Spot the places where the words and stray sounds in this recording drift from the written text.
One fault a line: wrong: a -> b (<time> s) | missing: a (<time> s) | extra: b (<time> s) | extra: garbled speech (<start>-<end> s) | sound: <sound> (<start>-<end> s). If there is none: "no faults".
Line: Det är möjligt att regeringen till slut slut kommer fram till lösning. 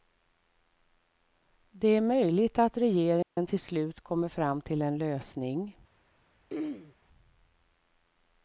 sound: dropout (3.2-3.4 s)
missing: slut (4.0 s)
extra: en (4.8 s)
sound: throat clearing (6.5-6.9 s)